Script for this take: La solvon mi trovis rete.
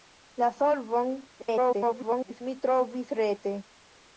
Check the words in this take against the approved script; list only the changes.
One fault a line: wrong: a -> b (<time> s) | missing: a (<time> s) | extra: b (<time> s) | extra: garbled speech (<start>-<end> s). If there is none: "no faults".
extra: garbled speech (1.4-2.4 s)